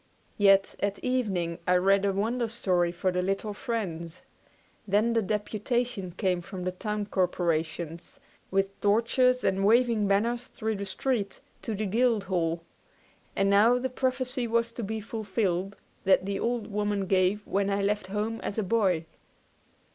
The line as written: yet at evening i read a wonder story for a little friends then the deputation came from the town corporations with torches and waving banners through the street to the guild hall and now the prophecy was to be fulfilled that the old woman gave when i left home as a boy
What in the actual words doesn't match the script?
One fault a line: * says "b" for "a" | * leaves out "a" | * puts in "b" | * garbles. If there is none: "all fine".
* says "the" for "a"